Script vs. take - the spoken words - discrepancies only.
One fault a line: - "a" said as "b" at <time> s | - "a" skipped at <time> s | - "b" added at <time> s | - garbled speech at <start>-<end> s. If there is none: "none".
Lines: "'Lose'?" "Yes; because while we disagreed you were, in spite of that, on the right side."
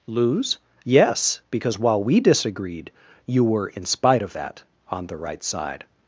none